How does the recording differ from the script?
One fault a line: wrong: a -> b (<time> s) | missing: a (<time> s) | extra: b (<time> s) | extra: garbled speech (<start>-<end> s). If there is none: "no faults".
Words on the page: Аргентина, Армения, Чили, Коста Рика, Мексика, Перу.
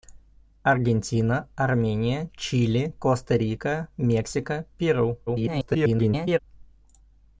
extra: garbled speech (5.3-6.4 s)